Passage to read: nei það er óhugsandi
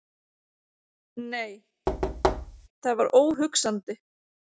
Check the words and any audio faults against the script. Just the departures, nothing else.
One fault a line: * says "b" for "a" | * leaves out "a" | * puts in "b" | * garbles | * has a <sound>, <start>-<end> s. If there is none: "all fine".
* has a thud, 1.9-2.7 s
* says "var" for "er"